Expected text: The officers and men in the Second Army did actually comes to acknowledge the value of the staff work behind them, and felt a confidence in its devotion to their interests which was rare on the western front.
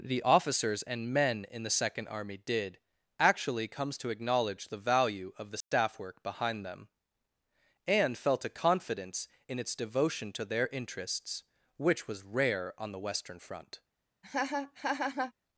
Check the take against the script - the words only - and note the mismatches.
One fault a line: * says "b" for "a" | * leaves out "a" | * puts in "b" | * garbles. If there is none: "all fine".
all fine